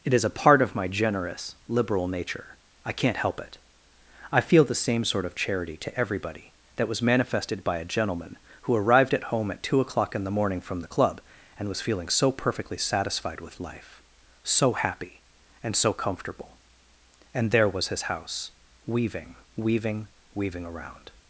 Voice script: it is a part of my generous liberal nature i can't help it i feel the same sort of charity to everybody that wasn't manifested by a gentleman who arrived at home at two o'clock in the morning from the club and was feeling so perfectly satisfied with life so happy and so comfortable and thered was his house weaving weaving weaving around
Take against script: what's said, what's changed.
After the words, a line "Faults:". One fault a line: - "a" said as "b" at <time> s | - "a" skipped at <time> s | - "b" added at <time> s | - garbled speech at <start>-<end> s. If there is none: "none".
it is a part of my generous liberal nature i can't help it i feel the same sort of charity to everybody that was manifested by a gentleman who arrived at home at two o'clock in the morning from the club and was feeling so perfectly satisfied with life so happy and so comfortable and there was his house weaving weaving weaving around
Faults:
- "wasn't" said as "was" at 6.9 s
- "thered" said as "there" at 17.5 s